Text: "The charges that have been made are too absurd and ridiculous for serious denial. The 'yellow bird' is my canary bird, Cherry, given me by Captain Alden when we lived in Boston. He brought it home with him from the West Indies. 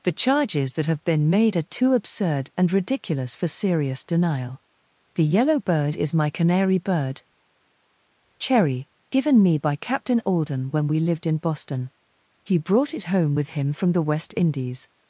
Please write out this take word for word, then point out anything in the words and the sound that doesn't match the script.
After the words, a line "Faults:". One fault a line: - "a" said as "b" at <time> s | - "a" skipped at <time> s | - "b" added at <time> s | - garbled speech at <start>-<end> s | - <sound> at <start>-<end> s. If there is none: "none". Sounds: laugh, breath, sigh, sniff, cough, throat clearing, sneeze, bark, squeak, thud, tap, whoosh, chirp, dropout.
"The charges that have been made are too absurd and ridiculous for serious denial. The 'yellow bird' is my canary bird, Cherry, given me by Captain Alden when we lived in Boston. He brought it home with him from the West Indies.
Faults:
none